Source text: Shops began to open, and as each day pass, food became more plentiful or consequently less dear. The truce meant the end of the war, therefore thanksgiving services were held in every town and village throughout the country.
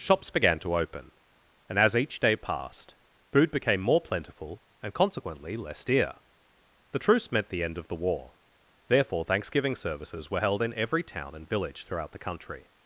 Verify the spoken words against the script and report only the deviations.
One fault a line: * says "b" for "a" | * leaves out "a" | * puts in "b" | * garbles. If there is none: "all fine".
* says "passed" for "pass"
* says "and" for "or"